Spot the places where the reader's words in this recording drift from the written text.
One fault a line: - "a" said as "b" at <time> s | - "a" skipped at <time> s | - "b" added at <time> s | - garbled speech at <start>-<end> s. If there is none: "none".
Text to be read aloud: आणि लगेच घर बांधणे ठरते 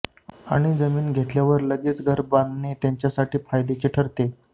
- "जमीन घेतल्यावर" added at 0.8 s
- "त्यांच्यासाठी फायद्याचे" added at 2.8 s